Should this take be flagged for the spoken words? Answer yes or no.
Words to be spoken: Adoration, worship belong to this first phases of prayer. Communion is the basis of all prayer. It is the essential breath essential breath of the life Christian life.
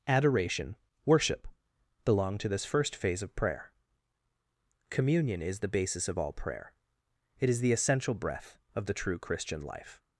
yes